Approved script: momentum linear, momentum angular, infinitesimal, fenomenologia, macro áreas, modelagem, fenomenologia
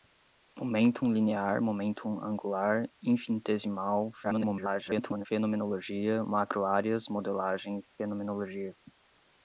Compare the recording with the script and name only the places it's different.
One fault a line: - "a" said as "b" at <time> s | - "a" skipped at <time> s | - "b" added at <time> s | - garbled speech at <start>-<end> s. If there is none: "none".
- garbled speech at 4.2-5.3 s